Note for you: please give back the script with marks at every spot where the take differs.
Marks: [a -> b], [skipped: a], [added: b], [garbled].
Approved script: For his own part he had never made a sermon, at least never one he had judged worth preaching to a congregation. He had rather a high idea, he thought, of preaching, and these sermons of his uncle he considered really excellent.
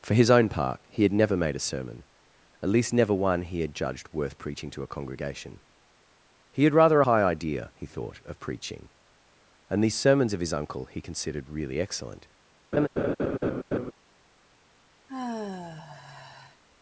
For his own part he had never made a sermon, at least never one he had judged worth preaching to a congregation. He had rather [skipped: a] high idea, he thought, of preaching, and these sermons of his uncle he considered really excellent.